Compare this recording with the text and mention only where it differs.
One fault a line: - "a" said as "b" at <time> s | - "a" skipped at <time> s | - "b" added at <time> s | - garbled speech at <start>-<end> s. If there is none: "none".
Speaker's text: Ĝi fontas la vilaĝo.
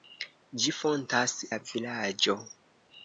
none